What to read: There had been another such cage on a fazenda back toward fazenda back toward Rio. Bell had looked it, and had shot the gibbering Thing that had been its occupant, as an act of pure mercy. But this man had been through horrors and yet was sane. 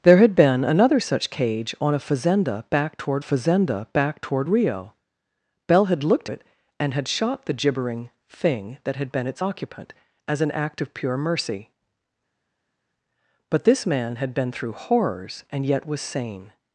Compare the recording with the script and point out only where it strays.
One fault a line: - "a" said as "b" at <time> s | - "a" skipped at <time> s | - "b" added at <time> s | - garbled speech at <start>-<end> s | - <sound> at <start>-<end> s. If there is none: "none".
none